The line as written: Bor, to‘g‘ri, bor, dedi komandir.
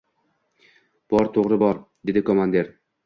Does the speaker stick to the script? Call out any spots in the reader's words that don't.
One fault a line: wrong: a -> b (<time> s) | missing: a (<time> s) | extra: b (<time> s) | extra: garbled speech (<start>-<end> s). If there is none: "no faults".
no faults